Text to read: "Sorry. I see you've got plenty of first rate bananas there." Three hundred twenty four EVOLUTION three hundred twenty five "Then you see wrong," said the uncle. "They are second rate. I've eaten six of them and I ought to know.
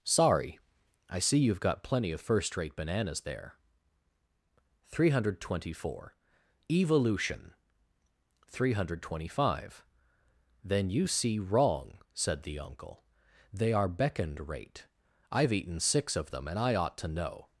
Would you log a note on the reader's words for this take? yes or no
yes